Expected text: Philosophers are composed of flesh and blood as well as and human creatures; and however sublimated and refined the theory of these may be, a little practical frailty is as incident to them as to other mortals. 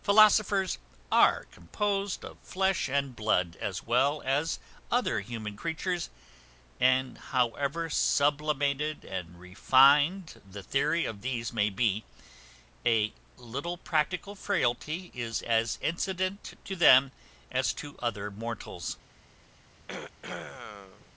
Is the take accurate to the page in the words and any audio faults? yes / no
no